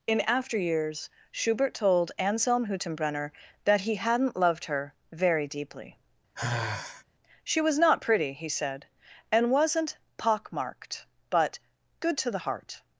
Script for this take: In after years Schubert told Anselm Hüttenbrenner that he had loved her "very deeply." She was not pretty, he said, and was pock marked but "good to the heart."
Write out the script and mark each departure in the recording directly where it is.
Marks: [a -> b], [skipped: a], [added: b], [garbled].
In after years Schubert told Anselm Hüttenbrenner that he [had -> hadn't] loved her "very deeply." She was not pretty, he said, and [was -> wasn't] pock marked but "good to the heart."